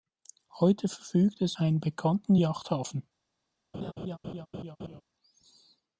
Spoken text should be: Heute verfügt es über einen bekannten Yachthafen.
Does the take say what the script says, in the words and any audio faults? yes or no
no